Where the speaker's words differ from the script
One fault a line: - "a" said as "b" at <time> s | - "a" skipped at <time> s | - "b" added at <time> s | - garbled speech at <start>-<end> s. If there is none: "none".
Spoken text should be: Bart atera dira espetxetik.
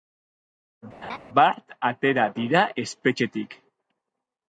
none